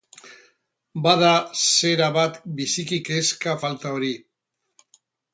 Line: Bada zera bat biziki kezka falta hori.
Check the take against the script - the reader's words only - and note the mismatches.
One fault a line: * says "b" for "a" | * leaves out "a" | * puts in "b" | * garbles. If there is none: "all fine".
all fine